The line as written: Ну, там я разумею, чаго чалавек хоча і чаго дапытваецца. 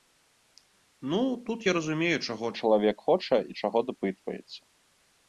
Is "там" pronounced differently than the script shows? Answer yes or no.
yes